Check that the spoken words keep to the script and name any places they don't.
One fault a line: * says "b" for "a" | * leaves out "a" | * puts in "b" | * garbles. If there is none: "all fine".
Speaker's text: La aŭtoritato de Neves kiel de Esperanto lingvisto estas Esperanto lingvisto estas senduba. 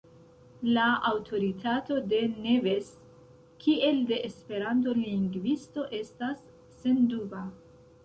* leaves out "Esperanto lingvisto estas"